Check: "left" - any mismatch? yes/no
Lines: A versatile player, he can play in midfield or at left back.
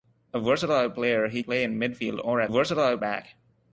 yes